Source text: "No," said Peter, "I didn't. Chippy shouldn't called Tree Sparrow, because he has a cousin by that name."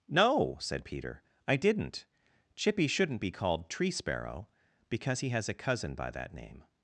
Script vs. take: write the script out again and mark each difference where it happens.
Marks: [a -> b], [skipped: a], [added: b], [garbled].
"No," said Peter, "I didn't. Chippy shouldn't [added: be] called Tree Sparrow, because he has a cousin by that name."